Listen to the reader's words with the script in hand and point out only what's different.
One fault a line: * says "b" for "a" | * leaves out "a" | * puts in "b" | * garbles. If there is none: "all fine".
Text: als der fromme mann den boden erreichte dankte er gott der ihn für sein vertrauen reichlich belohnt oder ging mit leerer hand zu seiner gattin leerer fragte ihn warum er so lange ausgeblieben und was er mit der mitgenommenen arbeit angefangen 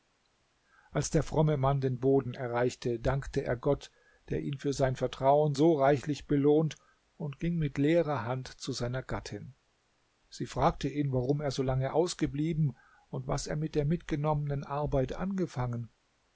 * puts in "so"
* says "und" for "oder"
* says "sie" for "leerer"